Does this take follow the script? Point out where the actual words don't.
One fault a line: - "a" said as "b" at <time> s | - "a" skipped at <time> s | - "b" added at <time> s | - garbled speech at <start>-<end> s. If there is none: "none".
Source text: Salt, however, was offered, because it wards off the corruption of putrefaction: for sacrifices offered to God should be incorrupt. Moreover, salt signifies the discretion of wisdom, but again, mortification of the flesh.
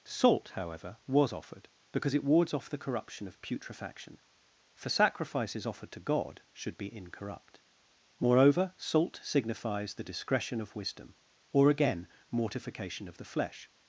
- "but" said as "or" at 11.5 s